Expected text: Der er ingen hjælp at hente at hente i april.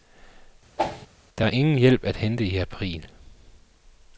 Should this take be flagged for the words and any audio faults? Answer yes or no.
yes